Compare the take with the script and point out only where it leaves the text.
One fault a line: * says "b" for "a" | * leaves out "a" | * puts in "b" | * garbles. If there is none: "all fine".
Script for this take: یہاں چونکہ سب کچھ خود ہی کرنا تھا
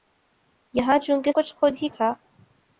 * leaves out "سب"
* leaves out "کرنا"